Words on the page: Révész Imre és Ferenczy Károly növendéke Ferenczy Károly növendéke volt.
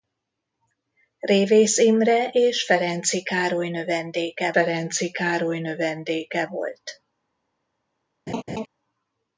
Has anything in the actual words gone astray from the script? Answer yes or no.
no